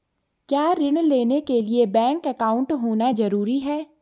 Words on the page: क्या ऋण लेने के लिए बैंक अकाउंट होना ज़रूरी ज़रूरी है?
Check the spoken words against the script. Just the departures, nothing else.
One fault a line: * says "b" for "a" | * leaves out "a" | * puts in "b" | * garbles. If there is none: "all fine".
* leaves out "ज़रूरी"